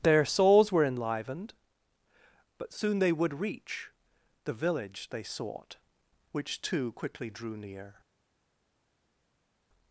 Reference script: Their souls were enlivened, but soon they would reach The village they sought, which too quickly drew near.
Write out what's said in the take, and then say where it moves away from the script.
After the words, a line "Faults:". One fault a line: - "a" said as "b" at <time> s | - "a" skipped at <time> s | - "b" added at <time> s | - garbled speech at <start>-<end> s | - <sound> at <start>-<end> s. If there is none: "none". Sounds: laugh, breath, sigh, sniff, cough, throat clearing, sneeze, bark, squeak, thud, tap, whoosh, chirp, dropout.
Their souls were enlivened, but soon they would reach The village they sought, which too quickly drew near.
Faults:
none